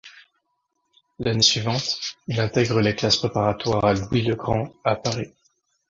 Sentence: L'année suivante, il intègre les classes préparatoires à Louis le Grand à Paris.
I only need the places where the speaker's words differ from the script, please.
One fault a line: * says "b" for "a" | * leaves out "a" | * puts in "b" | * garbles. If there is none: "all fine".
all fine